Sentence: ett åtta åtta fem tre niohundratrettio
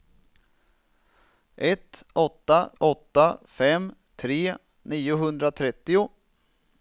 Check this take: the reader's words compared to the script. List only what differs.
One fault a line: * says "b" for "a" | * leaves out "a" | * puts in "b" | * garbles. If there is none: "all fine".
all fine